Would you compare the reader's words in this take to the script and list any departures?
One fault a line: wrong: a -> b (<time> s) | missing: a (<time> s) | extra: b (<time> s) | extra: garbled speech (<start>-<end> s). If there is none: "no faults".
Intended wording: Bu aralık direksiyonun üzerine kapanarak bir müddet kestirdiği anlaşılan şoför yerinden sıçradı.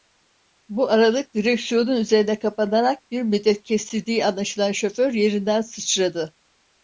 no faults